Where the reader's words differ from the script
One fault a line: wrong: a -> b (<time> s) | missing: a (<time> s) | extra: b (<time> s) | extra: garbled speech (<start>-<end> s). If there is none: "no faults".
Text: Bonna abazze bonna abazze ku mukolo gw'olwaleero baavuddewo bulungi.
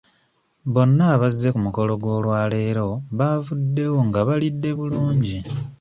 missing: bonna abazze (1.5 s)
extra: nga balidde (4.1 s)